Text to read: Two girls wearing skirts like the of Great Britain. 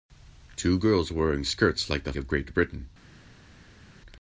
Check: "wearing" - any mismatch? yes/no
no